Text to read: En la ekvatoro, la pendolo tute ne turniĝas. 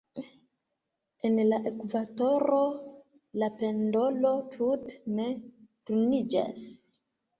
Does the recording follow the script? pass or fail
pass